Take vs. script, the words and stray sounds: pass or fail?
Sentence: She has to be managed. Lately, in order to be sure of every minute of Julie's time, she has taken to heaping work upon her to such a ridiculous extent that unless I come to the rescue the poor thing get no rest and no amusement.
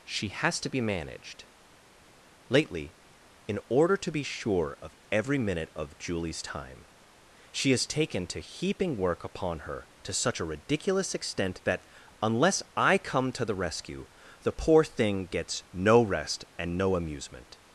fail